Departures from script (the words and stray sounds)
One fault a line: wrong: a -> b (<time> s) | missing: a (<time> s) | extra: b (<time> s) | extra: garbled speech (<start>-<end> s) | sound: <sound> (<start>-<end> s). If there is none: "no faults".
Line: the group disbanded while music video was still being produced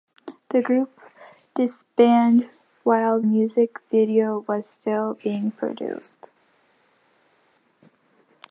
no faults